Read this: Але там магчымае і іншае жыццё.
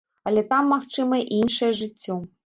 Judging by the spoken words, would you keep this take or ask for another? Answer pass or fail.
pass